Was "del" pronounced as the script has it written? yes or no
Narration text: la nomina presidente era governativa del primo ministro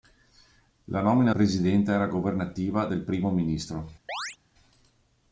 yes